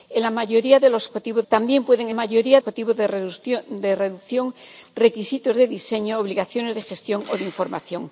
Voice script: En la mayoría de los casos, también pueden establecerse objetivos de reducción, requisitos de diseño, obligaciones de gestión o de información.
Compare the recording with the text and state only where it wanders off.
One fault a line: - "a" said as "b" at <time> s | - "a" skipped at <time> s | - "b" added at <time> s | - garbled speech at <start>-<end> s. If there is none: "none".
- "casos" said as "objetivos" at 1.1 s
- "establecerse" said as "mayoría" at 2.1 s